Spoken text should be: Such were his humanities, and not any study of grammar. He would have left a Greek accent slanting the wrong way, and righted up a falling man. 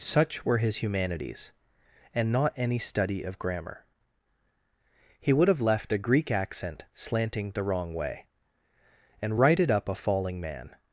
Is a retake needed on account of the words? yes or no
no